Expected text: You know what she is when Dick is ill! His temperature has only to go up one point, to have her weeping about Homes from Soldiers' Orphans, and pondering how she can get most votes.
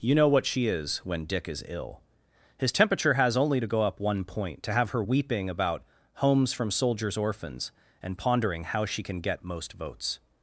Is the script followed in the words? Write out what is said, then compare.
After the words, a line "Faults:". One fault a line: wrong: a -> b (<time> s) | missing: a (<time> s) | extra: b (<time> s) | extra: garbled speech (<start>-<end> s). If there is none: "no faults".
You know what she is when Dick is ill! His temperature has only to go up one point, to have her weeping about Homes from Soldiers' Orphans, and pondering how she can get most votes.
Faults:
no faults